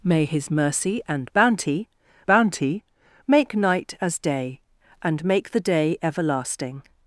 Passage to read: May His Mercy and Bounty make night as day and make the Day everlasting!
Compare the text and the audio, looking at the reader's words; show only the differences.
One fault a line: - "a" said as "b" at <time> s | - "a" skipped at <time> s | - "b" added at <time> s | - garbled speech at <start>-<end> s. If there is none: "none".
- "Bounty" added at 2.3 s